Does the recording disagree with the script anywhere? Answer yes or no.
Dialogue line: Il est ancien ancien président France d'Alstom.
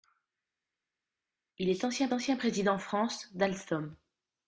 no